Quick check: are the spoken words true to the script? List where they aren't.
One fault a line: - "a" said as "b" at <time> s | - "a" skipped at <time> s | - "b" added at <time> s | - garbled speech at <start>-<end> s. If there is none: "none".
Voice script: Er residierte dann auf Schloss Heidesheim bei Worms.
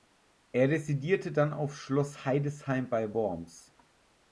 none